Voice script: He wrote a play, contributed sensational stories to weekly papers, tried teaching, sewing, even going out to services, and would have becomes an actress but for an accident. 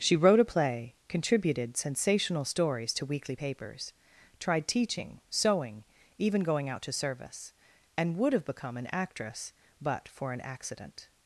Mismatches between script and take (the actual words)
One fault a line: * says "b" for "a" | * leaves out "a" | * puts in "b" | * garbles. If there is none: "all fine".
* says "She" for "He"
* says "service" for "services"
* says "become" for "becomes"